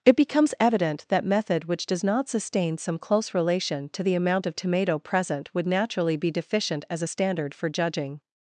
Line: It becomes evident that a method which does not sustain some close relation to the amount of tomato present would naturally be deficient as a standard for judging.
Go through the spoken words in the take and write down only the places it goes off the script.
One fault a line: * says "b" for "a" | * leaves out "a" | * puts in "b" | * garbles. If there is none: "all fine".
* leaves out "a"